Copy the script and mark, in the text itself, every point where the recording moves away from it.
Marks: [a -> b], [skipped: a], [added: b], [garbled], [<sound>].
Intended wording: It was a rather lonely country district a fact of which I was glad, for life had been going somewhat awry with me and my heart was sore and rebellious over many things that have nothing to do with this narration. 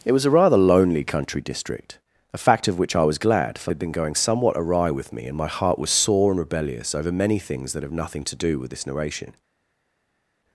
It was a rather lonely country district a fact of which I was glad, for [skipped: life] had been going somewhat awry with me and my heart was sore and rebellious over many things that have nothing to do with this narration.